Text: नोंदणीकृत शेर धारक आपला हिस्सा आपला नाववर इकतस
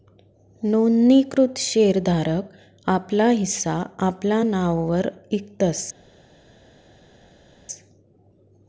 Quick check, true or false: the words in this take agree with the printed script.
true